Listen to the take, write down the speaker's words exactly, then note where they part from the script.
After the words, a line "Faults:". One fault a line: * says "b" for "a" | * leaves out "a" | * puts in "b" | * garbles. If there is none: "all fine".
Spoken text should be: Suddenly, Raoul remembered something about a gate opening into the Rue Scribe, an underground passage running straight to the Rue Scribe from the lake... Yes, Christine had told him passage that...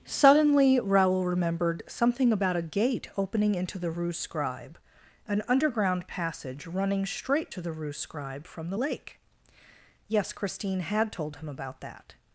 Suddenly, Raoul remembered something about a gate opening into the Rue Scribe, an underground passage running straight to the Rue Scribe from the lake... Yes, Christine had told him about that...
Faults:
* says "about" for "passage"